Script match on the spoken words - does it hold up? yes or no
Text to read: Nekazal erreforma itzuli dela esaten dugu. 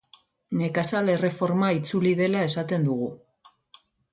yes